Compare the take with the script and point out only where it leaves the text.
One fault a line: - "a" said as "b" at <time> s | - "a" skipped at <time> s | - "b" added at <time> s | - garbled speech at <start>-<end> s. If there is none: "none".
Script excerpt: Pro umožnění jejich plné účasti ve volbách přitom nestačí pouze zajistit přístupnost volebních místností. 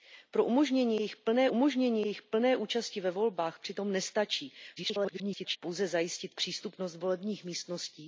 - "umožnění jejich plné" added at 1.5 s
- garbled speech at 4.8-5.6 s